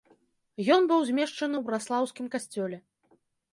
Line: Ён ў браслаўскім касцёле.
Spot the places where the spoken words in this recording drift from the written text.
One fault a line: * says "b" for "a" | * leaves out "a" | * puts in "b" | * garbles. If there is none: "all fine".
* puts in "быў змешчаны"